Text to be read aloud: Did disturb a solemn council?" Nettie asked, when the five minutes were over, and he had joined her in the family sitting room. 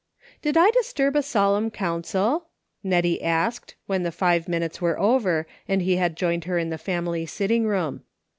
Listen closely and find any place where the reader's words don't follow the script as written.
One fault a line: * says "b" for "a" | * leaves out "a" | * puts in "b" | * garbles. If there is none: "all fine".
* puts in "I"